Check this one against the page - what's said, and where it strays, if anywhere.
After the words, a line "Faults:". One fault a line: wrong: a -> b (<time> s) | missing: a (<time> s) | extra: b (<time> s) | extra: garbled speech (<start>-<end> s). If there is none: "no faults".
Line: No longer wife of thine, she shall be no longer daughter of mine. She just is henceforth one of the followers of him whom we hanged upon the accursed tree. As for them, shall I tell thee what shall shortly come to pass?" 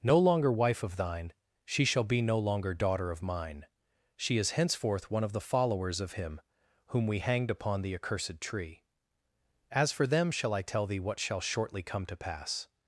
No longer wife of thine, she shall be no longer daughter of mine. She is henceforth one of the followers of him whom we hanged upon the accursed tree. As for them, shall I tell thee what shall shortly come to pass?"
Faults:
missing: just (4.4 s)